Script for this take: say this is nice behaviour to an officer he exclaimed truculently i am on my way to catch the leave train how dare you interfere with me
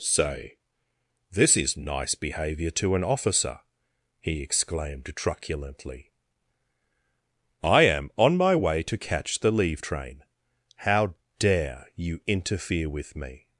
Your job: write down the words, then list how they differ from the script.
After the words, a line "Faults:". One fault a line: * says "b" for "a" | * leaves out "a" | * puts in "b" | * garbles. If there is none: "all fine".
say this is nice behaviour to an officer he exclaimed truculently i am on my way to catch the leave train how dare you interfere with me
Faults:
all fine